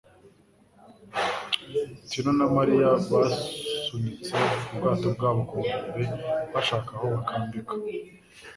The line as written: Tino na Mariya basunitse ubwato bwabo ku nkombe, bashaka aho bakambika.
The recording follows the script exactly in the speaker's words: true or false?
true